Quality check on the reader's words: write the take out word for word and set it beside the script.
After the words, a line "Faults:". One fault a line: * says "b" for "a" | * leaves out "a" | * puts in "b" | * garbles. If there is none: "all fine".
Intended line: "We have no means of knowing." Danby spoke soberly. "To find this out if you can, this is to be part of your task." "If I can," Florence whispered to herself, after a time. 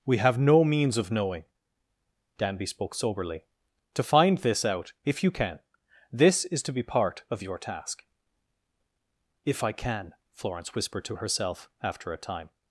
"We have no means of knowing." Danby spoke soberly. "To find this out if you can, this is to be part of your task." "If I can," Florence whispered to herself, after a time.
Faults:
all fine